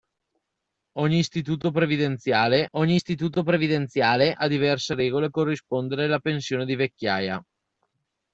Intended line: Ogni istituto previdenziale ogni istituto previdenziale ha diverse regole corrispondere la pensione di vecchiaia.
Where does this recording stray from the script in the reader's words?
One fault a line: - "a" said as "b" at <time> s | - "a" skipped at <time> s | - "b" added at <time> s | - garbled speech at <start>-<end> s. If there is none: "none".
none